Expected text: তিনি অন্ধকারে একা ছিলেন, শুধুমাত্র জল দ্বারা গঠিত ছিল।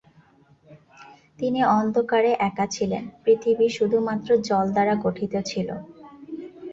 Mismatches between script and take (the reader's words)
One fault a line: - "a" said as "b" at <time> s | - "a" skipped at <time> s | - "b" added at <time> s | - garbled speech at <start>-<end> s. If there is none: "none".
- "পৃথিবী" added at 3.2 s